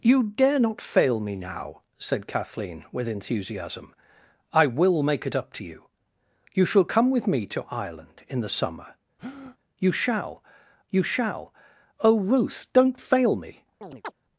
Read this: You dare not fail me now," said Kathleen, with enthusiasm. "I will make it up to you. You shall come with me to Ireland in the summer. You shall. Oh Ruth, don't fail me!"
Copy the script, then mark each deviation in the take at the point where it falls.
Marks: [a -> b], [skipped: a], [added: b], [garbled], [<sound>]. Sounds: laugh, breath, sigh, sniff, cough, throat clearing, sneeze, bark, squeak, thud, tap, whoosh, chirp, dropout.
You dare not fail me now," said Kathleen, with enthusiasm. "I will make it up to you. You shall come with me to Ireland in the summer. [breath] You shall. [added: you shall] Oh Ruth, don't fail me!" [chirp]